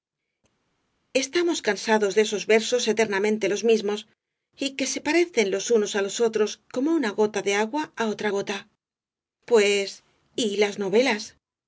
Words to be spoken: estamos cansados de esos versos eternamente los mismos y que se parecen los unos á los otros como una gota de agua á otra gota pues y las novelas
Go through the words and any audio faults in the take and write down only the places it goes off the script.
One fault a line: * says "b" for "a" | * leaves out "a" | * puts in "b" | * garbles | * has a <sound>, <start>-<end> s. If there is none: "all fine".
all fine